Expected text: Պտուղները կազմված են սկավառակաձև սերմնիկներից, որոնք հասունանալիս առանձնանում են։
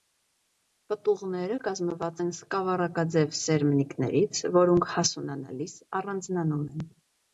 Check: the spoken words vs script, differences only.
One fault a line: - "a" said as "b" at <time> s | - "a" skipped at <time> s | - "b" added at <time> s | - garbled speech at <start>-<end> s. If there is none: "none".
none